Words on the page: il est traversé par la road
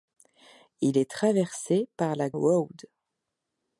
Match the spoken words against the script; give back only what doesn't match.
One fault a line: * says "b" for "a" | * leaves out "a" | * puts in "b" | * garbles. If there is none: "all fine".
all fine